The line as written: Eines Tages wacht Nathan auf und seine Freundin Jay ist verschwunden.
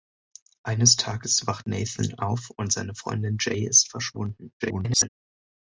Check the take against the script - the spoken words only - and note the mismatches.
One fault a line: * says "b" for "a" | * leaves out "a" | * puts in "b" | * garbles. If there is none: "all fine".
* garbles